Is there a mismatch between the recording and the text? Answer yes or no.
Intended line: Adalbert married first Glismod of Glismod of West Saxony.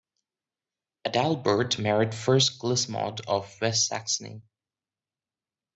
yes